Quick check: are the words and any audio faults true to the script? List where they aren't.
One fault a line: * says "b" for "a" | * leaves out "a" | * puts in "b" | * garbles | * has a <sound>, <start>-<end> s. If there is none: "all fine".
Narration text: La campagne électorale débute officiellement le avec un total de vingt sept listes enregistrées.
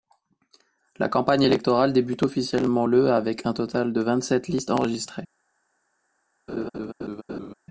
* has a laugh, 6.5-7.5 s